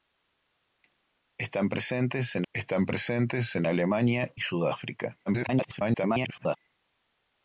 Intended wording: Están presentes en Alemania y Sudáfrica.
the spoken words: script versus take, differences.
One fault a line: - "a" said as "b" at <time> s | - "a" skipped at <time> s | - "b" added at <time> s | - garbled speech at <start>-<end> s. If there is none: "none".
- "están presentes en" added at 2.5 s
- garbled speech at 5.3-6.6 s